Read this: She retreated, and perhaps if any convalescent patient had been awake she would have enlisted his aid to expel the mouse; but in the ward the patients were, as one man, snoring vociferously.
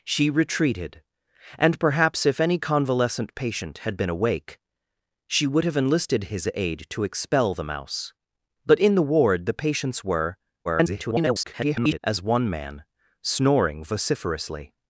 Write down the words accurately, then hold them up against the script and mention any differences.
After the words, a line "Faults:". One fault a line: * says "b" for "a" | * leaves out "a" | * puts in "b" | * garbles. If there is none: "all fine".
She retreated, and perhaps if any convalescent patient had been awake she would have enlisted his aid to expel the mouse; but in the ward the patients were, [garbled] as one man, snoring vociferously.
Faults:
* garbles